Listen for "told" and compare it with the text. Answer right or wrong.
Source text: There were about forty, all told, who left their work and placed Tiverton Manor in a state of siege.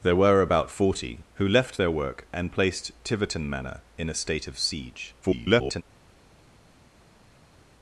wrong